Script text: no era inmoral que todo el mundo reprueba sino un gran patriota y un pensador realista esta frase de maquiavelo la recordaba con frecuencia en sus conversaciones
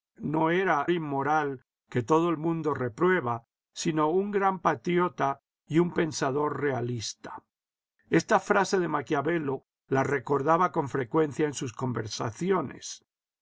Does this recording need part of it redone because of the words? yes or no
no